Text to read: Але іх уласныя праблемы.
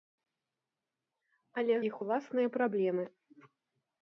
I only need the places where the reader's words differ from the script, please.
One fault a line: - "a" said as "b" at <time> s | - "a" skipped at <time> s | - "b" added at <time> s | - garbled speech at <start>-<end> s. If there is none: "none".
none